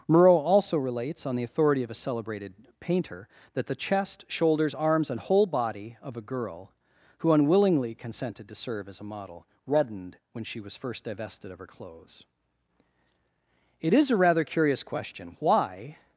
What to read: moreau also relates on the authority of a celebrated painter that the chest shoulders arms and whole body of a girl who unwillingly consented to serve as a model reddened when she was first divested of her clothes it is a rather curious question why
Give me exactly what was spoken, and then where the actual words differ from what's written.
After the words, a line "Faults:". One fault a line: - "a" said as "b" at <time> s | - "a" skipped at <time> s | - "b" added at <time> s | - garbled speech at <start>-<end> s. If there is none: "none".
moreau also relates on the authority of a celebrated painter that the chest shoulders arms and whole body of a girl who unwillingly consented to serve as a model reddened when she was first divested of her clothes it is a rather curious question why
Faults:
none